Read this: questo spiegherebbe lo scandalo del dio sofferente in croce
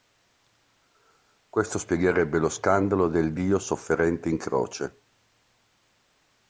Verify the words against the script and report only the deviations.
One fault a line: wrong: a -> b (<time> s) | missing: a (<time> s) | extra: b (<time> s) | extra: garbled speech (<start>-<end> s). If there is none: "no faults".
no faults